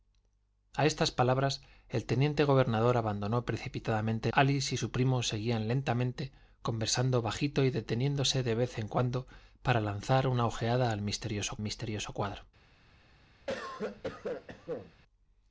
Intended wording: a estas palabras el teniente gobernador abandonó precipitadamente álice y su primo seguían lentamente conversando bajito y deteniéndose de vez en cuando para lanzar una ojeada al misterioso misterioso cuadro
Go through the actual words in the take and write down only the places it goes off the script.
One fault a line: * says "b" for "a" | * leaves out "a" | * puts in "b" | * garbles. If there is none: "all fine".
all fine